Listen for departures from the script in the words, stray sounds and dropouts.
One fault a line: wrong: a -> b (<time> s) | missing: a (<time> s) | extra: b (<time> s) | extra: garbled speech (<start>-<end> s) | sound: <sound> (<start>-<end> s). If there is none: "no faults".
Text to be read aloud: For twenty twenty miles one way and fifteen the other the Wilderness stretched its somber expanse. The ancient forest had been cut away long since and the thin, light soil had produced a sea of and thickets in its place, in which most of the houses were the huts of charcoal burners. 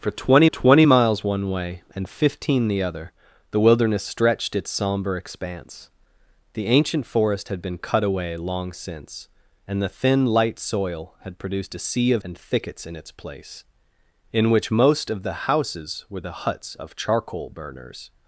no faults